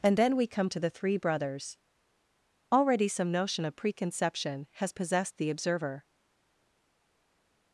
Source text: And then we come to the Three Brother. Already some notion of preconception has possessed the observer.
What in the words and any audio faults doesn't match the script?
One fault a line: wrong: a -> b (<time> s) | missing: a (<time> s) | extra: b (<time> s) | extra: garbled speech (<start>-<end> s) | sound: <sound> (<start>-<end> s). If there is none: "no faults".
wrong: Brother -> Brothers (1.2 s)